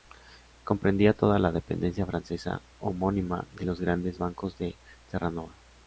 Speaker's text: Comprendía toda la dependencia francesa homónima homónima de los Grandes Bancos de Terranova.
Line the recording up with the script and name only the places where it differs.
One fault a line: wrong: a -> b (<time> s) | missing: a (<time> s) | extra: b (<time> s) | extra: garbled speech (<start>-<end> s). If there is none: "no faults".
missing: homónima (3.5 s)